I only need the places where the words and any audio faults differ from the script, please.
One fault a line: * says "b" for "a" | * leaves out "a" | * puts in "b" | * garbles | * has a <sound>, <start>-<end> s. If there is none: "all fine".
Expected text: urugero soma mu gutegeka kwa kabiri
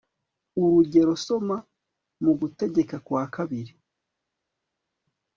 all fine